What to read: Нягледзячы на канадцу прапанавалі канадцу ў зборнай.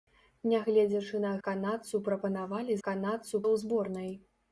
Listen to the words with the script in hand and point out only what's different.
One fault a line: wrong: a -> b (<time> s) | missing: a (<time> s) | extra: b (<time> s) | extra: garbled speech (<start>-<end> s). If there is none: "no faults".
no faults